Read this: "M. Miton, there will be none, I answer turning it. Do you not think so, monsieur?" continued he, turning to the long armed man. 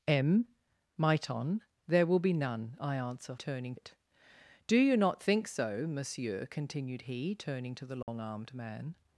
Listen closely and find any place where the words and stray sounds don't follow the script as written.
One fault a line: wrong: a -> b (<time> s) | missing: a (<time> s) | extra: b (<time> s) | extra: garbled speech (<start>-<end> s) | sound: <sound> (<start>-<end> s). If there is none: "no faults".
sound: dropout (8.0-8.1 s)